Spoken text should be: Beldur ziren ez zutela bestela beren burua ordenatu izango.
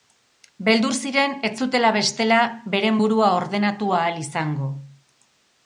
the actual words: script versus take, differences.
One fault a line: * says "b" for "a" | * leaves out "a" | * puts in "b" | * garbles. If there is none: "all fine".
* puts in "ahal"